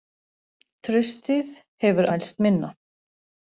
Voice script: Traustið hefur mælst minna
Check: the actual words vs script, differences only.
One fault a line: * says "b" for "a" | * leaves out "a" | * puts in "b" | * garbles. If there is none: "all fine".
all fine